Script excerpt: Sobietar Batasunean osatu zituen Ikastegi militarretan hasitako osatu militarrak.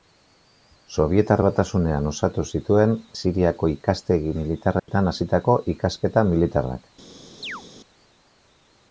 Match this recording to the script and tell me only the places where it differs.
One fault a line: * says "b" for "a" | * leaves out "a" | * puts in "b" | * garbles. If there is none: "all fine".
* puts in "Siriako"
* says "ikasketa" for "osatu"